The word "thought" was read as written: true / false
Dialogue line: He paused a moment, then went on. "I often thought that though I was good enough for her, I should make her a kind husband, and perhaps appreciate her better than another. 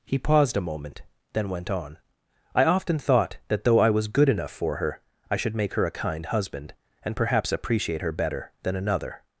true